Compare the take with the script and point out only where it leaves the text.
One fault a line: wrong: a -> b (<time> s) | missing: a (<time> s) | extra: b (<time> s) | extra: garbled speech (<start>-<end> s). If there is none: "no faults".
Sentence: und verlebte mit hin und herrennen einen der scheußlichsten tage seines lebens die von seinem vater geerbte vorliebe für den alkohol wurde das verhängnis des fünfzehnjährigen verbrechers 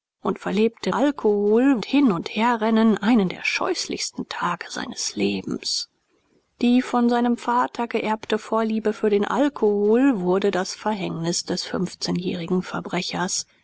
wrong: mit -> alkohol (0.9 s)